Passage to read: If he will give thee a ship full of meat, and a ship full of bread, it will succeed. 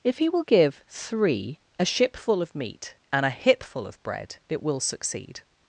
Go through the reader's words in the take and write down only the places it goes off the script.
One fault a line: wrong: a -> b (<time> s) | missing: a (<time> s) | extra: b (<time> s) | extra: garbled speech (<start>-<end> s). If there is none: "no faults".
wrong: thee -> three (0.9 s)
wrong: ship -> hip (3.3 s)